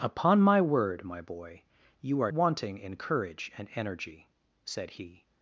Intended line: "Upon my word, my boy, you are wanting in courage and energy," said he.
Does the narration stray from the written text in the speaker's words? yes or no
no